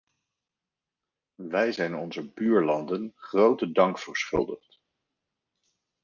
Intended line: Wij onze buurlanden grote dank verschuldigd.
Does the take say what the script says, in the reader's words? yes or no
no